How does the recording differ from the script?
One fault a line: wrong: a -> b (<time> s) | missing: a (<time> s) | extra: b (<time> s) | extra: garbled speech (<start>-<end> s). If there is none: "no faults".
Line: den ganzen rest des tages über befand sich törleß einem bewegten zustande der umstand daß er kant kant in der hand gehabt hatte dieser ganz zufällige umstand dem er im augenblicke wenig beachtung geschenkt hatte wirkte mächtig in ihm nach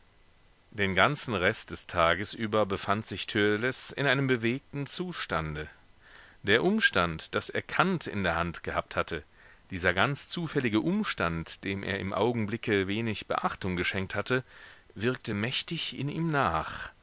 extra: in (3.9 s)
missing: kant (8.1 s)